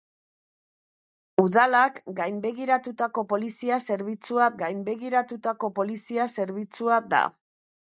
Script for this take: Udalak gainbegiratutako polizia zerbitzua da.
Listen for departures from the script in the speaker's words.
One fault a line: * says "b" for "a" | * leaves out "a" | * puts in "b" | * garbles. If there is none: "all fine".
* puts in "gainbegiratutako polizia zerbitzua"